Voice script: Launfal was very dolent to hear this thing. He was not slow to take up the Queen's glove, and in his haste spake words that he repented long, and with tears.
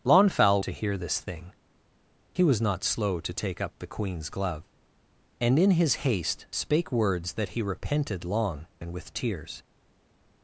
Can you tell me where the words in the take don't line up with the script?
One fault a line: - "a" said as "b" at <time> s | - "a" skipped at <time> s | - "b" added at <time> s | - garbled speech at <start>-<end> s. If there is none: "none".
- "was very dolent" skipped at 0.6 s